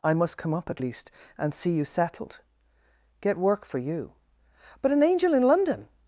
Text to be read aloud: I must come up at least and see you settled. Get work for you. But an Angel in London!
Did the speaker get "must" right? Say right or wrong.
right